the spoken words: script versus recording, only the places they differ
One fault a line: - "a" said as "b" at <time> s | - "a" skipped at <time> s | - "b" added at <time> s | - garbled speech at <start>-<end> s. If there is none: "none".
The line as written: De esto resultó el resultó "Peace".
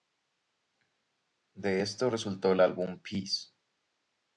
- "resultó" said as "álbum" at 2.6 s